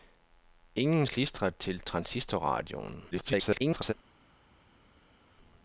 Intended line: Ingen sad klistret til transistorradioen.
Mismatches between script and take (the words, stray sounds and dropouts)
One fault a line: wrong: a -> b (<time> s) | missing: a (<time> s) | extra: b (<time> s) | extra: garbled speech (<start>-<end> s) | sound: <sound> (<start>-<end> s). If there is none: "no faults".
missing: sad (1.1 s)
extra: garbled speech (3.1-3.9 s)